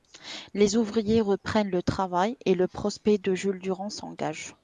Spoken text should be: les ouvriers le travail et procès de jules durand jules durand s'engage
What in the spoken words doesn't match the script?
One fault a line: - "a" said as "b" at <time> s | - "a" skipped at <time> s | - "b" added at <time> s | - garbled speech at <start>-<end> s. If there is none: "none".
- "reprennent" added at 1.2 s
- "le" added at 2.5 s
- "jules durand" skipped at 3.9 s